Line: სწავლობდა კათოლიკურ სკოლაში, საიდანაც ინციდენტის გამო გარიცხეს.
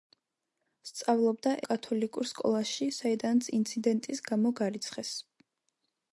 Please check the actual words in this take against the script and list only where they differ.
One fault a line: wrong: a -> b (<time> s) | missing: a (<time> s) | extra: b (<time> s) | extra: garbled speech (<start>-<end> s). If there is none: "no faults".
no faults